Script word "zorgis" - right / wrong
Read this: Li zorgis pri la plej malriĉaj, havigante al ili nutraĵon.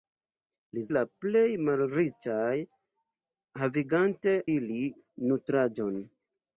wrong